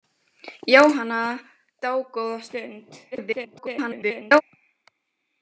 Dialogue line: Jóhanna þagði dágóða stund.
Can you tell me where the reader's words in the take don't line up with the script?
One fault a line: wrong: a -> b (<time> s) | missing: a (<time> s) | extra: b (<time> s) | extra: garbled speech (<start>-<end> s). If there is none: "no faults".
missing: þagði (1.2 s)
extra: garbled speech (3.1-4.4 s)